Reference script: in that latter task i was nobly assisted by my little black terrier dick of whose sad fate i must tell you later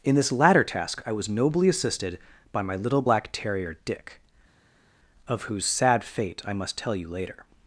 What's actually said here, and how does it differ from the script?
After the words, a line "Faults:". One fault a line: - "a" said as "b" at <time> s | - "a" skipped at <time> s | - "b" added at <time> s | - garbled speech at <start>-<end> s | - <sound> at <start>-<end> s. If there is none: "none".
in this latter task i was nobly assisted by my little black terrier dick of whose sad fate i must tell you later
Faults:
- "that" said as "this" at 0.1 s